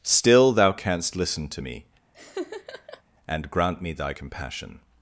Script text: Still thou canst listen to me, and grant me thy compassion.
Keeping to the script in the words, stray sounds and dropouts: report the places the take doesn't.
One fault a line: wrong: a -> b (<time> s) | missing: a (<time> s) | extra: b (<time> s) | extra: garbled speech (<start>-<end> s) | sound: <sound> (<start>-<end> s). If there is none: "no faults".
sound: laugh (2.1-3.0 s)